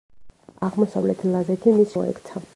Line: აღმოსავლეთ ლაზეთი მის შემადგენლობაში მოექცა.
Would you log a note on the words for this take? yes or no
yes